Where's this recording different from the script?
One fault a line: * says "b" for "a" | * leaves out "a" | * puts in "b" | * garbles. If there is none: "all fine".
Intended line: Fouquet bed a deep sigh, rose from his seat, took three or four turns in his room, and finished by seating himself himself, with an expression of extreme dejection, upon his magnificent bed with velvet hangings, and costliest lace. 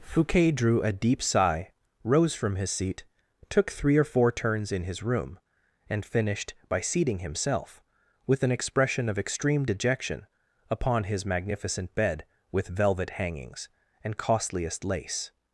* says "drew" for "bed"
* leaves out "himself"